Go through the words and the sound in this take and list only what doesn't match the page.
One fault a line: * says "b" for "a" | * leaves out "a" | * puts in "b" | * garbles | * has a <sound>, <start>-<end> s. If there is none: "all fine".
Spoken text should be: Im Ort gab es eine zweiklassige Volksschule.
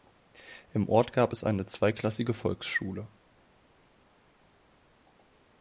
all fine